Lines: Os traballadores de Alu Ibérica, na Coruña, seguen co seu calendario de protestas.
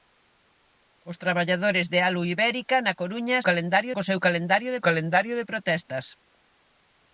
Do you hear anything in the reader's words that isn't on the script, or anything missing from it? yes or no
yes